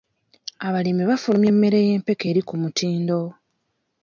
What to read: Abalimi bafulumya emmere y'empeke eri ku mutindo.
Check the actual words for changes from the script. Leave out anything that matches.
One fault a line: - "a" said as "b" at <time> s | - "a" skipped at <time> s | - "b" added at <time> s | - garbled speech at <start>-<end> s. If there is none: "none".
none